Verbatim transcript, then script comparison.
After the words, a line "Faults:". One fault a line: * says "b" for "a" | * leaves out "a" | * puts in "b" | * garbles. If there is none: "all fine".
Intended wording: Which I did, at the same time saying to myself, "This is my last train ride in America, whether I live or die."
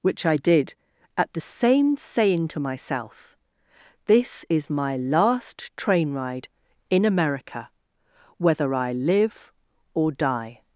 Which I did, at the same saying to myself, "This is my last train ride in America, whether I live or die."
Faults:
* leaves out "time"